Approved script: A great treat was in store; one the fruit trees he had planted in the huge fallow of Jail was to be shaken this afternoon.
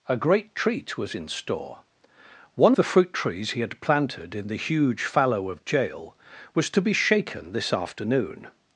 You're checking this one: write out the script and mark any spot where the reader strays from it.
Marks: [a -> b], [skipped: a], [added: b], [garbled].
A great treat was in store; one the fruit trees he had planted in the huge fallow of Jail was to be shaken this afternoon.